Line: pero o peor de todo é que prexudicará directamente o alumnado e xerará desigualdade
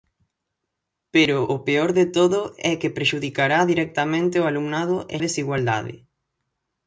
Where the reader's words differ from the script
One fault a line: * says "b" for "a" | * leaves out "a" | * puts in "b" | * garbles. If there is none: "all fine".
* leaves out "xerará"